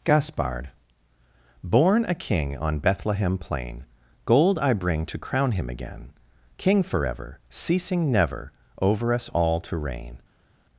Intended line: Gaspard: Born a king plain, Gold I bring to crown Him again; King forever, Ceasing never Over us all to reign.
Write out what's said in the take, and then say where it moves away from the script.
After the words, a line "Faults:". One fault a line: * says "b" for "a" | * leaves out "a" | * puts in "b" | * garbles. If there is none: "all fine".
Gaspard: Born a king on Bethlehem plain, Gold I bring to crown Him again; King forever, Ceasing never Over us all to reign.
Faults:
* puts in "on Bethlehem"